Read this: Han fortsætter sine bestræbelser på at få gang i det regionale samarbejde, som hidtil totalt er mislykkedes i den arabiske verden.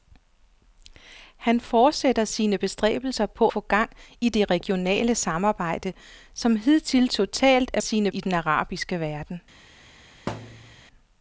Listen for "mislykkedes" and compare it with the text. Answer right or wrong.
wrong